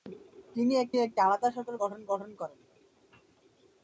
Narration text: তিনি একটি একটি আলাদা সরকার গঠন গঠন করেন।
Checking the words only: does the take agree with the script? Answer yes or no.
yes